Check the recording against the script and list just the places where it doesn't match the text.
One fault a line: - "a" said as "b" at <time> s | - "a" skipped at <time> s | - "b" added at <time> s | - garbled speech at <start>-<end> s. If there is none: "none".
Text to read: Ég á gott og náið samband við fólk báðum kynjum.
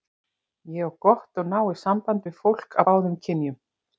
none